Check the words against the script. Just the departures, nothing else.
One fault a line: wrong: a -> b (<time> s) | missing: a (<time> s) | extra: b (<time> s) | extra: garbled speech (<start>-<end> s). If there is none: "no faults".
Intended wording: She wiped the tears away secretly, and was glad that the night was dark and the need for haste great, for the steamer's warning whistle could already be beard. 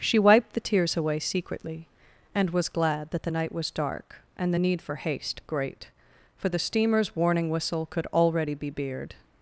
no faults